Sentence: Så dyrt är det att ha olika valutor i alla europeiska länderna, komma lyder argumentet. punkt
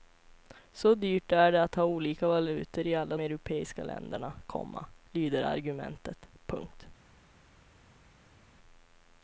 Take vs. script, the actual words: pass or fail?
pass